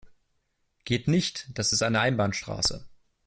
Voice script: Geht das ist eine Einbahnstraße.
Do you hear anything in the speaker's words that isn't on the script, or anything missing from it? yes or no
yes